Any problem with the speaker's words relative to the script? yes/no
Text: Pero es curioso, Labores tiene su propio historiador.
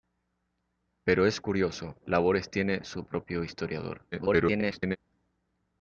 yes